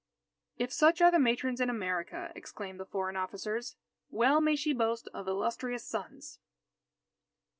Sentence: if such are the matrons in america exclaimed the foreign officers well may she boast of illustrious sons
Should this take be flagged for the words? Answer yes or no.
no